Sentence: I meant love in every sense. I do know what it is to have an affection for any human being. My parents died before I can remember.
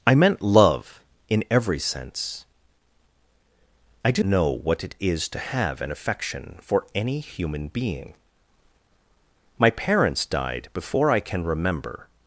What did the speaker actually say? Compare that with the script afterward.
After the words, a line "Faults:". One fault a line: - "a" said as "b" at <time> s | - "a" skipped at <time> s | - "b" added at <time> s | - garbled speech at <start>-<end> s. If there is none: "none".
I meant love in every sense. I do know what it is to have an affection for any human being. My parents died before I can remember.
Faults:
none